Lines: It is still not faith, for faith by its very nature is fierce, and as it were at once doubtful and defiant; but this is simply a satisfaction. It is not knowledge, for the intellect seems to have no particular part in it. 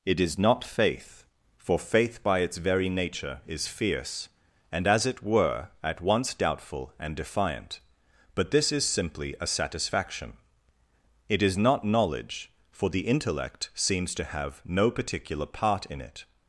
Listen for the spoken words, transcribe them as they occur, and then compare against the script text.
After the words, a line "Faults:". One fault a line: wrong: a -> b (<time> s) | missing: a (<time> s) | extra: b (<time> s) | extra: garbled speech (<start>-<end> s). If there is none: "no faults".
It is not faith, for faith by its very nature is fierce, and as it were at once doubtful and defiant; but this is simply a satisfaction. It is not knowledge, for the intellect seems to have no particular part in it.
Faults:
missing: still (0.4 s)